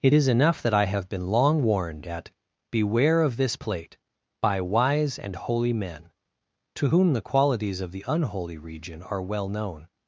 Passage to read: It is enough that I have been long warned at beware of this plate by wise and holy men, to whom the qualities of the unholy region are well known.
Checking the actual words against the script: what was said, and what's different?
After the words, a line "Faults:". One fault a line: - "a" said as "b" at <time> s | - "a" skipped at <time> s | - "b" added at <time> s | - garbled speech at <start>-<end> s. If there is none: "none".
It is enough that I have been long warned at beware of this plate by wise and holy men, to whom the qualities of the unholy region are well known.
Faults:
none